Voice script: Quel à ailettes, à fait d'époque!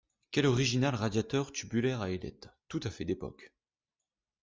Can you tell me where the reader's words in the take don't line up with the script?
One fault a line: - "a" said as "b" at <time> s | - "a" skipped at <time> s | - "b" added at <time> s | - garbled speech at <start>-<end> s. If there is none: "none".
- "original radiateur tubulaire" added at 0.5 s
- "tout" added at 2.7 s